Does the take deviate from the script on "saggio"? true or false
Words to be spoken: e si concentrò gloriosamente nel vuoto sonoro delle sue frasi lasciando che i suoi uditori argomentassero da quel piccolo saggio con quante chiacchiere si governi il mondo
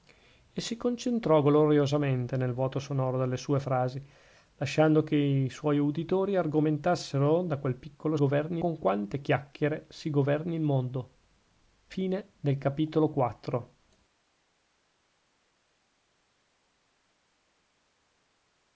true